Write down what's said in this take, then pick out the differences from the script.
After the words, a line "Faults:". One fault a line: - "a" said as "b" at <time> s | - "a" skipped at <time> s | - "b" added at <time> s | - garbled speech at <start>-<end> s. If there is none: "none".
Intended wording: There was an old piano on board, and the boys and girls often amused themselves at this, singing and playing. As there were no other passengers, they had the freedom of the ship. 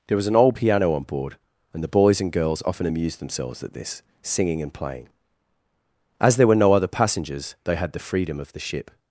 There was an old piano on board, and the boys and girls often amused themselves at this, singing and playing. As there were no other passengers, they had the freedom of the ship.
Faults:
none